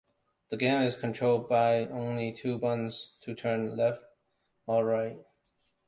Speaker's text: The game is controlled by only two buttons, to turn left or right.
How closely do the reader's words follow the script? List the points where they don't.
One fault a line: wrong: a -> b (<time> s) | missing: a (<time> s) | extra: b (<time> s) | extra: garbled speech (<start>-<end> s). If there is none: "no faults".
no faults